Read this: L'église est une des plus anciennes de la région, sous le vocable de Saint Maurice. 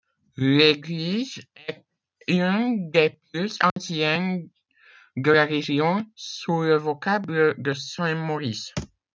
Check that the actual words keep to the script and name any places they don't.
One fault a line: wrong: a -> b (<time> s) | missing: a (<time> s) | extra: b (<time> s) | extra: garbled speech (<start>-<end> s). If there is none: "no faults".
no faults